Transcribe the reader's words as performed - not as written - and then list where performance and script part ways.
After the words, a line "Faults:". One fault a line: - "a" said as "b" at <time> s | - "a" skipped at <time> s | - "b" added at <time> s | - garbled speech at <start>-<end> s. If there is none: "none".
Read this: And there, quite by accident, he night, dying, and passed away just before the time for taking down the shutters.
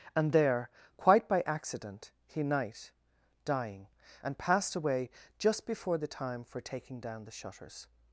And there, quite by accident, he night, dying, and passed away just before the time for taking down the shutters.
Faults:
none